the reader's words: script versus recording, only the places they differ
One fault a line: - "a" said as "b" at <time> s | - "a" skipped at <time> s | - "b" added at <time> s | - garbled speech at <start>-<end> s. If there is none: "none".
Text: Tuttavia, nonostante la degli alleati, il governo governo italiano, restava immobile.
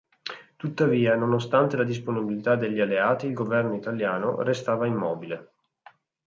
- "disponibilità" added at 1.8 s
- "governo" skipped at 3.7 s